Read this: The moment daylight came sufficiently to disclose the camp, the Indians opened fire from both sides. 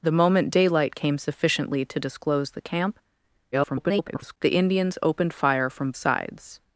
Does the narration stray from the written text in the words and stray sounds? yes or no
yes